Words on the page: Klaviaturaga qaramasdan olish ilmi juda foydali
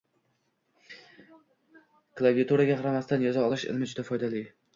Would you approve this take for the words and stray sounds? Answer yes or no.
no